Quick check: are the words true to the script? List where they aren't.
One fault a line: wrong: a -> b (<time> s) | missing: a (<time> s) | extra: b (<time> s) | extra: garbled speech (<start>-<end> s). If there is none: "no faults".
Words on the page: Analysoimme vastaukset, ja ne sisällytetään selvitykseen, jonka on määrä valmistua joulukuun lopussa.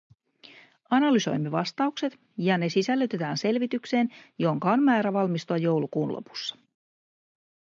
no faults